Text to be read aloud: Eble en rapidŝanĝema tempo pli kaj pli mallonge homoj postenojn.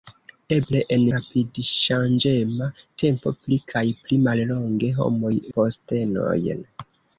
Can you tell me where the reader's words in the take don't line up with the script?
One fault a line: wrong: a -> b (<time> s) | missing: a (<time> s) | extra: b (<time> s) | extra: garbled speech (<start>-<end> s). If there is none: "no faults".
no faults